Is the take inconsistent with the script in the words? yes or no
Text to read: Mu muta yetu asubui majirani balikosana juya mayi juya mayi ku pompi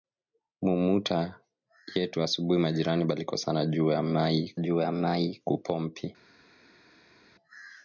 no